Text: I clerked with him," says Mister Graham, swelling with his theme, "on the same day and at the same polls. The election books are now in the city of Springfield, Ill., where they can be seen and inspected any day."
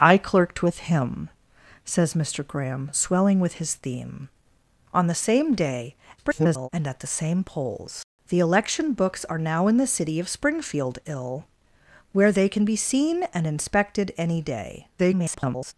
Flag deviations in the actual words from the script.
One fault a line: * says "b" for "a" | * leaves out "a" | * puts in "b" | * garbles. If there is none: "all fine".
* garbles
* garbles